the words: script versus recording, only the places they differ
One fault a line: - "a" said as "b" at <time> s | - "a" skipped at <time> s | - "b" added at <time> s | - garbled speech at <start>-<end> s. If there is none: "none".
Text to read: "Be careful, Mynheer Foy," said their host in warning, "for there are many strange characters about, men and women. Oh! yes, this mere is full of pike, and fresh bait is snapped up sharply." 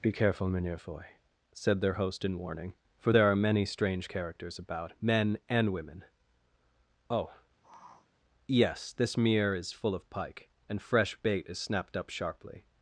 none